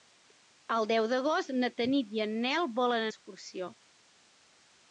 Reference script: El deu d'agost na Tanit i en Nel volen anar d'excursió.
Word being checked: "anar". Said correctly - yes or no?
no